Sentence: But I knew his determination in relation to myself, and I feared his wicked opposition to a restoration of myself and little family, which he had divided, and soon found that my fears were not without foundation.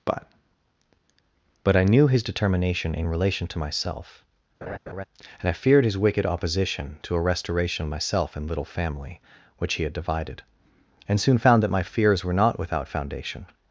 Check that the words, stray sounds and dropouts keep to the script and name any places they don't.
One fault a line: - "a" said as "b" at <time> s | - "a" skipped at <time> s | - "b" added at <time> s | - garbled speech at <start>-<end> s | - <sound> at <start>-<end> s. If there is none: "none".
- "but" added at 1.6 s
- laugh at 4.6-5.0 s